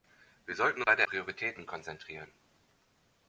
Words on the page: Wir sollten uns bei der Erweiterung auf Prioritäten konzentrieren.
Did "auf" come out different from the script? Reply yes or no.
yes